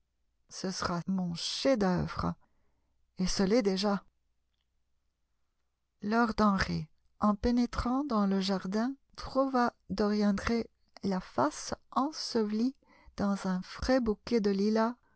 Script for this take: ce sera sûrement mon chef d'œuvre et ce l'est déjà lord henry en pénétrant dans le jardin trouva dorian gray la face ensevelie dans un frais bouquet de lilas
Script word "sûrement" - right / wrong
wrong